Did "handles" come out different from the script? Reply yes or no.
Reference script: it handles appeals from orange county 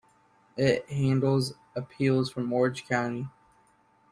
no